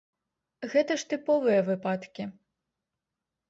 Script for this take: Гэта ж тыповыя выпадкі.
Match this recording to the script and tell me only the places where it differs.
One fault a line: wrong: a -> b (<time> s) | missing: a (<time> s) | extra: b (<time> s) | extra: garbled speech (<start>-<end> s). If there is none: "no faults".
no faults